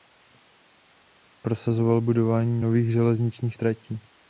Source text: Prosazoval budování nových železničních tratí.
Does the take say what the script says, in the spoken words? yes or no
yes